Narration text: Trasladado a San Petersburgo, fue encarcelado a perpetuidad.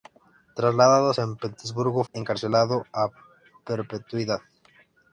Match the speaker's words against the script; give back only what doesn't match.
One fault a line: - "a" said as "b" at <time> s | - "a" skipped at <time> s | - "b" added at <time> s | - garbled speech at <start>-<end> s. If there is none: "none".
- "fue" skipped at 2.1 s